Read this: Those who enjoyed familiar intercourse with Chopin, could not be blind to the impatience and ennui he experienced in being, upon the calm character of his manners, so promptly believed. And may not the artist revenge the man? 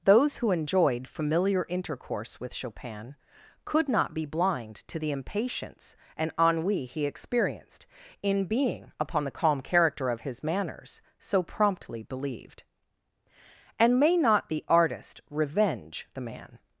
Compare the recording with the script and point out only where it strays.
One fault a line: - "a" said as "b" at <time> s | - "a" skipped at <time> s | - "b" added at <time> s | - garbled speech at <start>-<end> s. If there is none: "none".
none